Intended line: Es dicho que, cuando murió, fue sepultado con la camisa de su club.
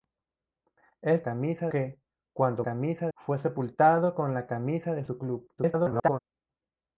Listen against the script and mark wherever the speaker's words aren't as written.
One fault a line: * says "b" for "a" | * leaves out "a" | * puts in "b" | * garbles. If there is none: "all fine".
* says "camisa" for "dicho"
* says "camisa" for "murió"
* garbles